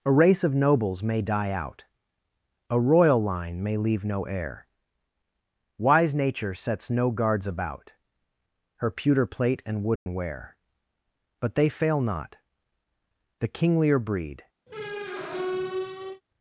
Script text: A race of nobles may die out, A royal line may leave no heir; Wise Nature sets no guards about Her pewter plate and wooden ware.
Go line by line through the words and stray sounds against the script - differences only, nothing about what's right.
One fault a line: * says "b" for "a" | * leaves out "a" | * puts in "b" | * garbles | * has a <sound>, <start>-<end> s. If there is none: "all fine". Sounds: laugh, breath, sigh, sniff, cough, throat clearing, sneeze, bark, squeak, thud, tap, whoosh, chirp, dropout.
* has a dropout, 10.0-10.1 s
* puts in "But they fail not the kinglier breed"
* has a squeak, 14.7-16.2 s